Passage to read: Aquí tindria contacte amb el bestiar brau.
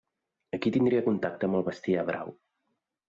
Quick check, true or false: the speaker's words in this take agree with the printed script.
true